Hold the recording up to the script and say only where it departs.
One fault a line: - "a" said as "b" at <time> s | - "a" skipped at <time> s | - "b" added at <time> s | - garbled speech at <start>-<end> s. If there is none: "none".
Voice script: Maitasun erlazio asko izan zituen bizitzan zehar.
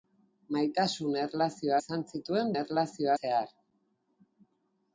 - "asko" skipped at 1.8 s
- "bizitzan" said as "erlazio" at 2.6 s